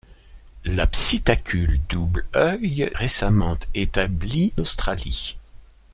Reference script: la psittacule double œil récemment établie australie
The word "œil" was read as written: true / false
true